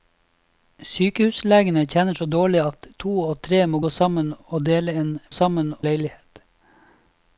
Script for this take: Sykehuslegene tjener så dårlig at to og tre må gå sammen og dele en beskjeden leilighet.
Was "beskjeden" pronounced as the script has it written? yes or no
no